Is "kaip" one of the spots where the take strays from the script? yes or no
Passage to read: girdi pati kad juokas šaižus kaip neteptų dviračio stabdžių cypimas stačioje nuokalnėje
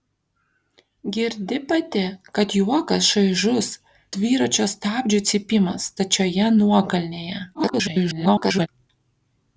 yes